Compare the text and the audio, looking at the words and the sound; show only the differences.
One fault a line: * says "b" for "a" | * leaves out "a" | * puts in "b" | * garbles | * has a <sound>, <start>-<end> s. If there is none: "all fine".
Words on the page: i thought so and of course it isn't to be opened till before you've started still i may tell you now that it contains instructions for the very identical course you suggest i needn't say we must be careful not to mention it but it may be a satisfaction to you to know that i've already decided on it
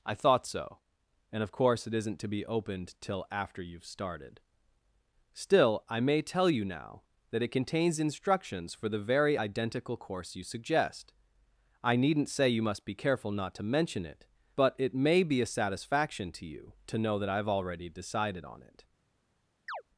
* says "after" for "before"
* says "you" for "we"
* has a chirp, 19.7-19.8 s